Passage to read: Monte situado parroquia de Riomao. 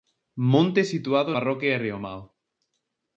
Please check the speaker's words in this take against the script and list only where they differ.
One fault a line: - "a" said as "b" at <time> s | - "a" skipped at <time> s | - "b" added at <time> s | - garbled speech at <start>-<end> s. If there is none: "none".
none